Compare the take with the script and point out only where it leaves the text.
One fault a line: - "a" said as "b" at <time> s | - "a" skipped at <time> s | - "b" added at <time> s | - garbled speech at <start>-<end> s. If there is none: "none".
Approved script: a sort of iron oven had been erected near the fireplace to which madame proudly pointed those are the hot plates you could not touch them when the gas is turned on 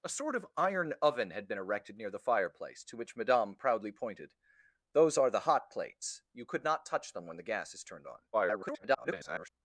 - garbled speech at 8.3-9.5 s